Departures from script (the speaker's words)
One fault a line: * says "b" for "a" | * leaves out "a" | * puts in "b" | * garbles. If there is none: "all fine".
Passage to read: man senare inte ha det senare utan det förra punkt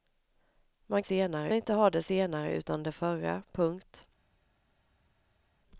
all fine